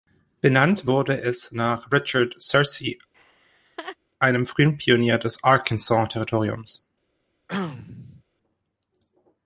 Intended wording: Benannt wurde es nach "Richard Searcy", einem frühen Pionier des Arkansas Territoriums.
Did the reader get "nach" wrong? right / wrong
right